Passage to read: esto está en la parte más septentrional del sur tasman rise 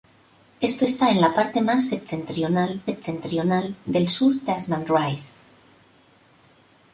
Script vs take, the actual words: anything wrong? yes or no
yes